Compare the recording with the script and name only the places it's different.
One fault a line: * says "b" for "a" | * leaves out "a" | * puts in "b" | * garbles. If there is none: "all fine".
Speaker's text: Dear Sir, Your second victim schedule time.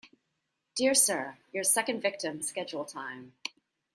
all fine